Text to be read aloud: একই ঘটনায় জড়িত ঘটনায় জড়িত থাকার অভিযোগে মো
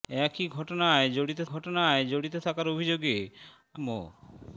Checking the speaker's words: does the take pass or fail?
pass